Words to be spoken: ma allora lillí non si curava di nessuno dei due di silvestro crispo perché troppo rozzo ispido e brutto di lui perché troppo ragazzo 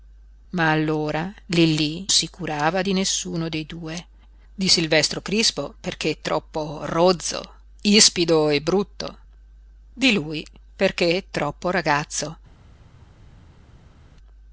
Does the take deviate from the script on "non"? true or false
true